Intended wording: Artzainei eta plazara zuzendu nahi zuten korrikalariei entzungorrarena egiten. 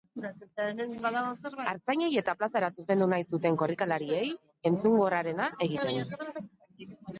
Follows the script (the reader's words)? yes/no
yes